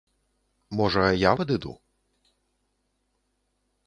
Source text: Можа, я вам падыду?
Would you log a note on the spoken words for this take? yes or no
yes